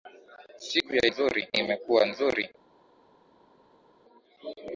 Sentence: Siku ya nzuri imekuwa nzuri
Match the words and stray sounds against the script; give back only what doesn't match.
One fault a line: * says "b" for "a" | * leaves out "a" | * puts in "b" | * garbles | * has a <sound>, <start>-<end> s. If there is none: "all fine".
all fine